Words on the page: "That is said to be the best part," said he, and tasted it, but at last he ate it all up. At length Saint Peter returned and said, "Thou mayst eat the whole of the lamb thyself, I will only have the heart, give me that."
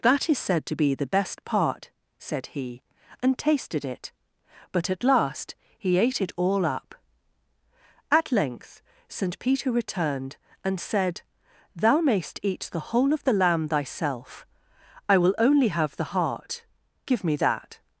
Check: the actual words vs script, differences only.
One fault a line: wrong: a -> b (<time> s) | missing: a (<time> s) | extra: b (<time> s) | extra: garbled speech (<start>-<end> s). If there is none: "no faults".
no faults